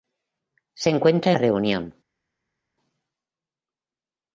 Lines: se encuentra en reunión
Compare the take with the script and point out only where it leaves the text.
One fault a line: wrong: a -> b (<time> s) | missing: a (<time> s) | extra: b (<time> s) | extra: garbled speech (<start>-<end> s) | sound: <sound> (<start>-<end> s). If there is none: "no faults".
missing: en (1.3 s)